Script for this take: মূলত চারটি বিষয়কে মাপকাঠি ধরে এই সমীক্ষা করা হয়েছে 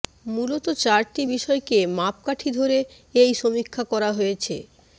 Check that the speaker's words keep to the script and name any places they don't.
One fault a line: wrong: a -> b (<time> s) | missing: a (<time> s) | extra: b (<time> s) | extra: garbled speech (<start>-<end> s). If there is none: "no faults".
no faults